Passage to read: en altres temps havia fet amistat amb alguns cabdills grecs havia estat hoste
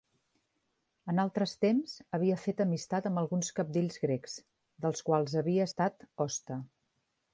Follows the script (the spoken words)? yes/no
no